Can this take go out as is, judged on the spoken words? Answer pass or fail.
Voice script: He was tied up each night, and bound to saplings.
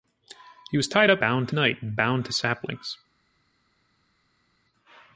fail